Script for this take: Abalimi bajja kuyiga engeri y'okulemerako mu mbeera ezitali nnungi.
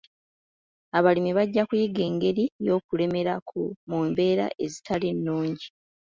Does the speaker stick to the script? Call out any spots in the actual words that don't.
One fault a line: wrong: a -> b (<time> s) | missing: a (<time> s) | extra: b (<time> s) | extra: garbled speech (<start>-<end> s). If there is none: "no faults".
no faults